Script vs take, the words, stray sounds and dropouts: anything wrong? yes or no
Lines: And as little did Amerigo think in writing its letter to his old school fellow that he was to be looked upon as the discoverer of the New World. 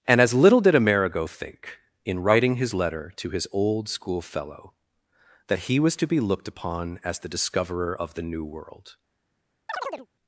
yes